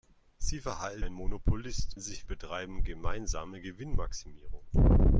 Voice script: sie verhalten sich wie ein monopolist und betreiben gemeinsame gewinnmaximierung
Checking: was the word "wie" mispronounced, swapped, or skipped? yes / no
yes